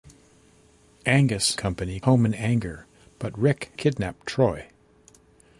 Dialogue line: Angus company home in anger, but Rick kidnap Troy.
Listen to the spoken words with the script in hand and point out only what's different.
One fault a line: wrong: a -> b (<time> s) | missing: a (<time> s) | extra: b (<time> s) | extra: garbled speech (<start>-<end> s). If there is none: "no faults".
no faults